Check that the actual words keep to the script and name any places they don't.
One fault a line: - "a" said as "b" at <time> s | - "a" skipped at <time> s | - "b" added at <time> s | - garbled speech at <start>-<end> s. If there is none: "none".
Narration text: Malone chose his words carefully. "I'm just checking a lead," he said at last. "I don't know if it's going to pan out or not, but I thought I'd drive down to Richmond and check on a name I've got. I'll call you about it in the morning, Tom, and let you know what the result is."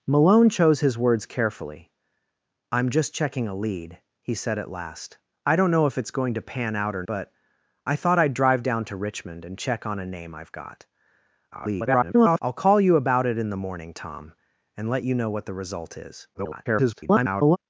- "not" skipped at 7.0 s
- garbled speech at 11.5-12.4 s
- garbled speech at 16.3-17.6 s